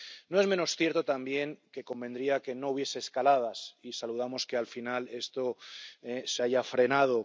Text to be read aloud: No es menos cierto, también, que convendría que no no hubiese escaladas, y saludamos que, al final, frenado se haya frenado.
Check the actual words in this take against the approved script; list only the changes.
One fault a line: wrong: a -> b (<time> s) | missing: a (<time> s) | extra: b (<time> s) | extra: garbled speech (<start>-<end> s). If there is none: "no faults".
missing: no (2.7 s)
wrong: frenado -> esto (5.1 s)